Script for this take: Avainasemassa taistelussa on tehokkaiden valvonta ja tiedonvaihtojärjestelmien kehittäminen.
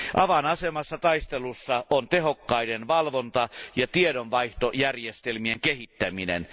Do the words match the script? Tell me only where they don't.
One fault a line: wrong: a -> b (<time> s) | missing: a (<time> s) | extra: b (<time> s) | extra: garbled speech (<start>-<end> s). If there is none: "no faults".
no faults